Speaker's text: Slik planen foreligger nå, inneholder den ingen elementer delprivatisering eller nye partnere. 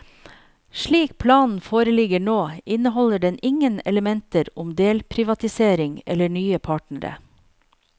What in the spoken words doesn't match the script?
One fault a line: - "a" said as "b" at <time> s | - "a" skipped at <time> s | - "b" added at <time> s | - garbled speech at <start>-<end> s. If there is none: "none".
- "om" added at 4.6 s